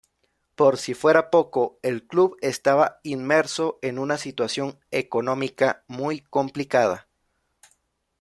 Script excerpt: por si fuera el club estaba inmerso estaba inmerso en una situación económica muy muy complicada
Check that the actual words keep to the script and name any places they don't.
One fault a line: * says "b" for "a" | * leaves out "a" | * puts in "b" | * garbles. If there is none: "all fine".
* puts in "poco"
* leaves out "estaba inmerso"
* leaves out "muy"